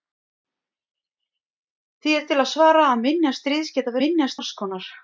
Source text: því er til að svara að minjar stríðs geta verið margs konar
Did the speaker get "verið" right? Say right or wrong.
wrong